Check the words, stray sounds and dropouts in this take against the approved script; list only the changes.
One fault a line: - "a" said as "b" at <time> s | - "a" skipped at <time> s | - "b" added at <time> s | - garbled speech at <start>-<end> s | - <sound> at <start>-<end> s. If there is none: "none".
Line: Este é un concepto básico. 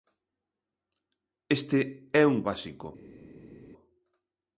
- "concepto" skipped at 2.4 s